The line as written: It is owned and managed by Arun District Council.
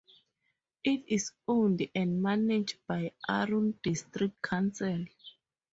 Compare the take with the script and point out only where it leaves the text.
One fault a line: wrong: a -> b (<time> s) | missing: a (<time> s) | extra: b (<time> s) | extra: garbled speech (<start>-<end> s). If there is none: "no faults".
no faults